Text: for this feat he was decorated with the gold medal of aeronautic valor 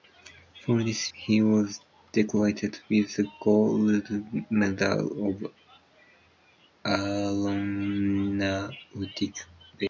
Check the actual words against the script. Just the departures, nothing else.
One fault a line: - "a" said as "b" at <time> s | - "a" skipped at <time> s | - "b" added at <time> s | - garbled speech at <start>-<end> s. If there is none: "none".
- "feat" skipped at 1.1 s